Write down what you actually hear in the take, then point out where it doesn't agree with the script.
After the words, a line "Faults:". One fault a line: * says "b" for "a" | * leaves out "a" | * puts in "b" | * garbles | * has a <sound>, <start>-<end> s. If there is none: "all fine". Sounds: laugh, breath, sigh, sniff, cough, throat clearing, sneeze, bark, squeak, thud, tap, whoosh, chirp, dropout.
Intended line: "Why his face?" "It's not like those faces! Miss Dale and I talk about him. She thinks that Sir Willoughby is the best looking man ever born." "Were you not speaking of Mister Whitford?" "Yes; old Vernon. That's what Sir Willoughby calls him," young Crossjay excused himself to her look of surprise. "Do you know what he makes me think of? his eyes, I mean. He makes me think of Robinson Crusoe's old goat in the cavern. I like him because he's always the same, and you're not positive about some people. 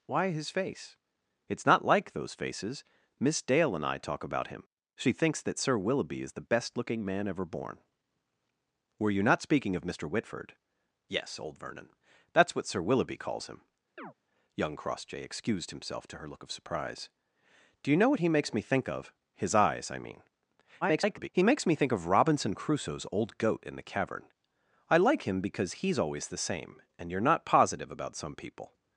"Why his face?" "It's not like those faces! Miss Dale and I talk about him. She thinks that Sir Willoughby is the best looking man ever born." "Were you not speaking of Mister Whitford?" "Yes; old Vernon. That's what Sir Willoughby calls him," young Crossjay excused himself to her look of surprise. "Do you know what he makes me think of? his eyes, I mean. [garbled] He makes me think of Robinson Crusoe's old goat in the cavern. I like him because he's always the same, and you're not positive about some people.
Faults:
* has a chirp, 14.0-14.1 s
* garbles